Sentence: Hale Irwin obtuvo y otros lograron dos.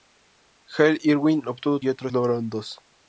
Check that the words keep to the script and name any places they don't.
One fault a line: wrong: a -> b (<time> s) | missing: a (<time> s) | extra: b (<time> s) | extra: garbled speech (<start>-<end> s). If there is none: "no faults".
no faults